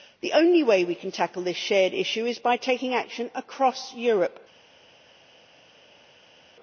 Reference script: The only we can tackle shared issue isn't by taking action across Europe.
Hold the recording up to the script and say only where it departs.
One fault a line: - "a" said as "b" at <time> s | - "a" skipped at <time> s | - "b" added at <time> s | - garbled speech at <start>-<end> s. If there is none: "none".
- "way" added at 0.6 s
- "this" added at 1.4 s
- "isn't" said as "is" at 2.2 s